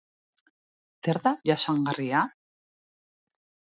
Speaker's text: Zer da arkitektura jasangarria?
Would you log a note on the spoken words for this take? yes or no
yes